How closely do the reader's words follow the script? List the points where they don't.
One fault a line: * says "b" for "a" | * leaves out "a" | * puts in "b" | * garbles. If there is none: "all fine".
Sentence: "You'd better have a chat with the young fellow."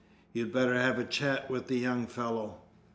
all fine